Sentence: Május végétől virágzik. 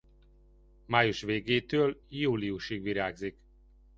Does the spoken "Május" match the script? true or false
true